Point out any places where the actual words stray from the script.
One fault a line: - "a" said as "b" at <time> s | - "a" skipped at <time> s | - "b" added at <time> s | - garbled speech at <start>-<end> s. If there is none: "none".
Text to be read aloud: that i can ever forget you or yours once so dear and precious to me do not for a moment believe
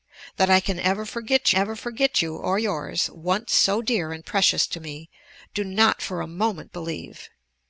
- "ever forget" added at 1.5 s